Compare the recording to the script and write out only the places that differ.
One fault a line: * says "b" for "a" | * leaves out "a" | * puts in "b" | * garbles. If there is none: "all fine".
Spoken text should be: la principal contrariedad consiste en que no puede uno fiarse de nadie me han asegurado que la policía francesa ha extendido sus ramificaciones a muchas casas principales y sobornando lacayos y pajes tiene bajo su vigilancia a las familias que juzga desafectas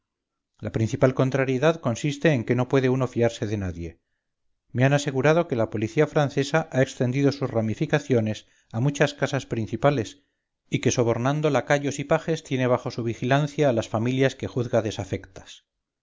* puts in "que"